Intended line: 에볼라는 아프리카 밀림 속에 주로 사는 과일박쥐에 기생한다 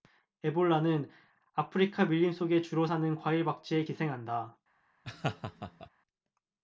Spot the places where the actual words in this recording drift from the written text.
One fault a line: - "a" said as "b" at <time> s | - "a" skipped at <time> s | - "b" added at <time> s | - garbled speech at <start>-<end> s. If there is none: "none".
none